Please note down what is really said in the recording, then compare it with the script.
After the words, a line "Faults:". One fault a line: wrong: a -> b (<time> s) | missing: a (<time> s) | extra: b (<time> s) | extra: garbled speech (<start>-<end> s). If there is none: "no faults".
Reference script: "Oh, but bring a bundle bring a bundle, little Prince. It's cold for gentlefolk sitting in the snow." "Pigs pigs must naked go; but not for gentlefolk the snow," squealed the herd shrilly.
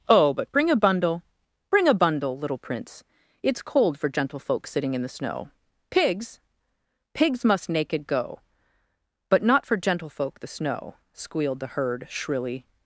"Oh, but bring a bundle bring a bundle, little Prince. It's cold for gentlefolk sitting in the snow." "Pigs pigs must naked go; but not for gentlefolk the snow," squealed the herd shrilly.
Faults:
no faults